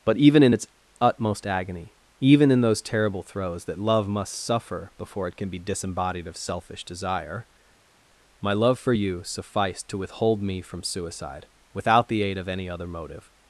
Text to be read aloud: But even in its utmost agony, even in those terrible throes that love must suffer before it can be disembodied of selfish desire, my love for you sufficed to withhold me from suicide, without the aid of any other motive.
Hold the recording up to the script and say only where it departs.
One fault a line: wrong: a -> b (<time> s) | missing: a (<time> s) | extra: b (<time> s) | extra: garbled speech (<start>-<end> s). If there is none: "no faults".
no faults